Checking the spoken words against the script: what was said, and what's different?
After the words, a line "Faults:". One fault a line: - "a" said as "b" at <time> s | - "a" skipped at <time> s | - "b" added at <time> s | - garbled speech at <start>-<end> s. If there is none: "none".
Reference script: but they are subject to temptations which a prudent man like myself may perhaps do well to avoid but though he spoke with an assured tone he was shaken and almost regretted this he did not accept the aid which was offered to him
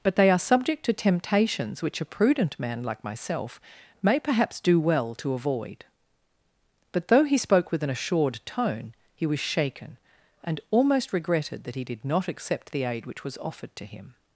but they are subject to temptations which a prudent man like myself may perhaps do well to avoid but though he spoke with an assured tone he was shaken and almost regretted that he did not accept the aid which was offered to him
Faults:
- "this" said as "that" at 11.6 s